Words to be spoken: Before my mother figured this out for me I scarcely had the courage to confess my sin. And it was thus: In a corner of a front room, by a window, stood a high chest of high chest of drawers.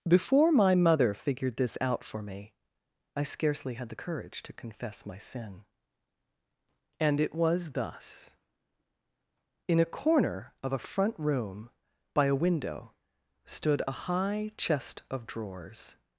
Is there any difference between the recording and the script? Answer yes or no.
yes